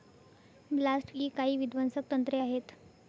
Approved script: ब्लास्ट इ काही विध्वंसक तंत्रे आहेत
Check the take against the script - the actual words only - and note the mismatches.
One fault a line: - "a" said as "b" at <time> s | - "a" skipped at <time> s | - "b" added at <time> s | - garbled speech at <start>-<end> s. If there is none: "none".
none